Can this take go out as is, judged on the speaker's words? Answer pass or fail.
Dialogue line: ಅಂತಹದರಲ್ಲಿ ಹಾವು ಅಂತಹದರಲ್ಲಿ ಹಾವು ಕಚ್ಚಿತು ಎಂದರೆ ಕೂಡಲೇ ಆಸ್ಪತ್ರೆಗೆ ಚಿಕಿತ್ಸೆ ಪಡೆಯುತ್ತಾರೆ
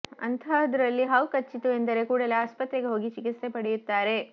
fail